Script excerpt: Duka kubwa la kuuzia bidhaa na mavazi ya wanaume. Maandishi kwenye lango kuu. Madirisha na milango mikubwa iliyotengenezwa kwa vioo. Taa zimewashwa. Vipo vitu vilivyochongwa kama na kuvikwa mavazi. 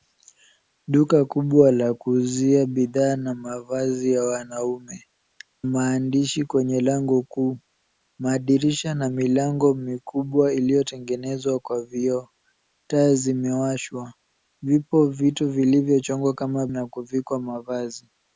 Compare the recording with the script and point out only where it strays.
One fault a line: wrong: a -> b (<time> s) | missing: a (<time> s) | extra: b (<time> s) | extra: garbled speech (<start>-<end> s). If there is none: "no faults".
no faults